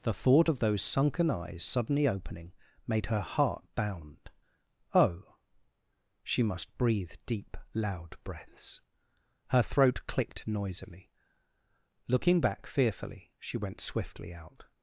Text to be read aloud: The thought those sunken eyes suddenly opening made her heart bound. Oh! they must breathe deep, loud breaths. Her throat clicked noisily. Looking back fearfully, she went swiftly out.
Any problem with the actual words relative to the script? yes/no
yes